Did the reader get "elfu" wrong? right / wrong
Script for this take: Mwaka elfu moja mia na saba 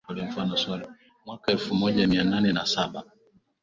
right